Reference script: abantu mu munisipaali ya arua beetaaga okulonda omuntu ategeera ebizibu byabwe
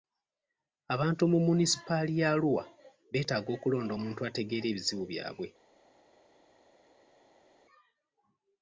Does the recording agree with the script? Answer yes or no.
yes